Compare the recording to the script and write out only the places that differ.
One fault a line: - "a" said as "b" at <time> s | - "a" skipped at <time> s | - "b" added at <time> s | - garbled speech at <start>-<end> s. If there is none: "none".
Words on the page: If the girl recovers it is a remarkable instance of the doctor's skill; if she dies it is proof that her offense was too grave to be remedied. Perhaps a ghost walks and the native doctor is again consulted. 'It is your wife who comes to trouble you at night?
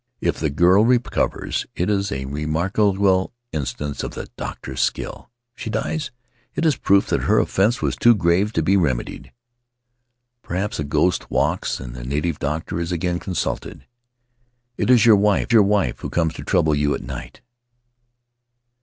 - "your wife" added at 15.5 s